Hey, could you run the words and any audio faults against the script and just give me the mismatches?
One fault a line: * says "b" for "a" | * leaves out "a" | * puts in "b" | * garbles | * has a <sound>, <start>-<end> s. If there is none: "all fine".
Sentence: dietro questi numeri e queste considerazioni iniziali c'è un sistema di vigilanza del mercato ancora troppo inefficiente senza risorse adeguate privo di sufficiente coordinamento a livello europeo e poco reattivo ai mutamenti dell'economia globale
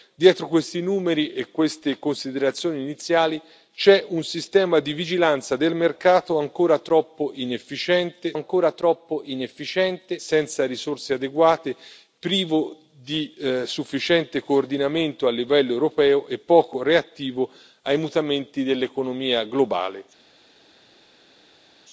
* puts in "ancora troppo inefficiente"